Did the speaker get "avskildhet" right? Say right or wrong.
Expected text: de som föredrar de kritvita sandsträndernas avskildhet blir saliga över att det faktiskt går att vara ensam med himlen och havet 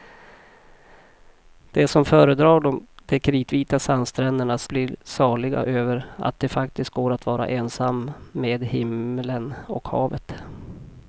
wrong